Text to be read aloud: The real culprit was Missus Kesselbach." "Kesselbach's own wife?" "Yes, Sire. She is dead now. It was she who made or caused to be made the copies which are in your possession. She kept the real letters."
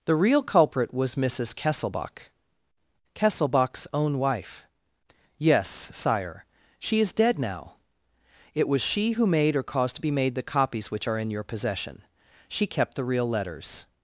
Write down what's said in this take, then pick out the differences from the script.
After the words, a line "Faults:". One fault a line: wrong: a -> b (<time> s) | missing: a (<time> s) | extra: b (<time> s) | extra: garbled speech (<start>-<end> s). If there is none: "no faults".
The real culprit was Missus Kesselbach." "Kesselbach's own wife?" "Yes, Sire. She is dead now. It was she who made or caused to be made the copies which are in your possession. She kept the real letters."
Faults:
no faults